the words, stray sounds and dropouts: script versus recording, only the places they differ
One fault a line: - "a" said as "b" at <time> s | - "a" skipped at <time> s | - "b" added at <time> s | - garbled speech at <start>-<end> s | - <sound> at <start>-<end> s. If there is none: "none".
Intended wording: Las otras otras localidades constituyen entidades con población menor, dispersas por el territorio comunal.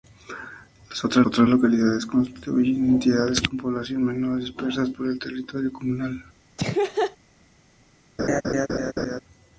- laugh at 6.6-7.2 s
- laugh at 8.2-9.2 s